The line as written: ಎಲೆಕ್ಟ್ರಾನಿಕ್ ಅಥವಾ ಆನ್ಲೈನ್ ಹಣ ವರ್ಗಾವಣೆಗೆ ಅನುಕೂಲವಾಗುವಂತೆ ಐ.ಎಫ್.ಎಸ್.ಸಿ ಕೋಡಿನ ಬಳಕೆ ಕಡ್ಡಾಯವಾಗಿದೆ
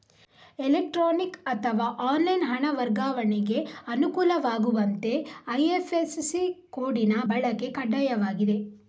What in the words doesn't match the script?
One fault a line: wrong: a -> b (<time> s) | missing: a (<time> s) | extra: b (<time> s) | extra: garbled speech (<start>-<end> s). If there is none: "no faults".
no faults